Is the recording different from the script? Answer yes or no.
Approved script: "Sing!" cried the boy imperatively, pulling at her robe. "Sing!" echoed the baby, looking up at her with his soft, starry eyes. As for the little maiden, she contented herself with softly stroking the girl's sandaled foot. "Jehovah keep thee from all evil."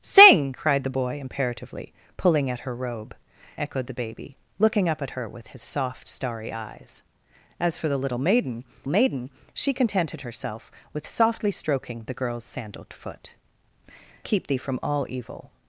yes